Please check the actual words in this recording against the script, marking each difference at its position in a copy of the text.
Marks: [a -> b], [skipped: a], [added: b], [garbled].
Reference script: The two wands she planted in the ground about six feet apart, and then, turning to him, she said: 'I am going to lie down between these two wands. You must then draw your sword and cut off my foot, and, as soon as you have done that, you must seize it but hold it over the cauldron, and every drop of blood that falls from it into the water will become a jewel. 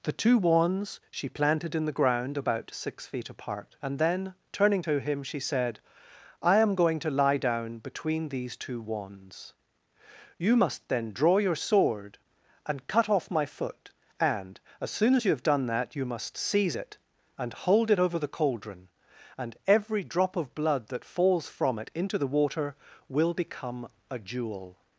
The two wands she planted in the ground about six feet apart, and then, turning to him, she said: 'I am going to lie down between these two wands. You must then draw your sword and cut off my foot, and, as soon as you have done that, you must seize it [but -> and] hold it over the cauldron, and every drop of blood that falls from it into the water will become a jewel.